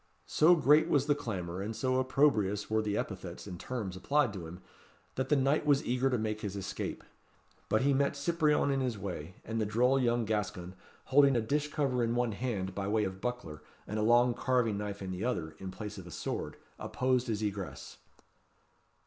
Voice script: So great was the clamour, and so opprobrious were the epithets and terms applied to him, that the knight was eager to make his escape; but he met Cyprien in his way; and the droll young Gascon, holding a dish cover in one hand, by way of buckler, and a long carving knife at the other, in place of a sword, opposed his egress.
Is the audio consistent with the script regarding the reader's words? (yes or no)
no